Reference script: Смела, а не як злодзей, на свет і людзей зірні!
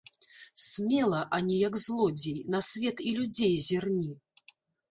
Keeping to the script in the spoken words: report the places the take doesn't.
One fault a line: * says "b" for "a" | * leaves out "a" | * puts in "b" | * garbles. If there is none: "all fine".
all fine